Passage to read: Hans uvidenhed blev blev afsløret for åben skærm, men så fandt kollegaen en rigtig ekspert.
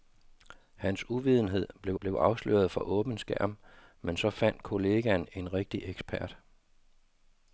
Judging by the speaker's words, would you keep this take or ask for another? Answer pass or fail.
pass